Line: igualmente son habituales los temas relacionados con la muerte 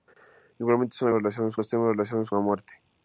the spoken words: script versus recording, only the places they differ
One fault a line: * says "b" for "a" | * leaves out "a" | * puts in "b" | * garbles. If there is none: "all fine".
* says "relacionados" for "habituales"
* leaves out "con"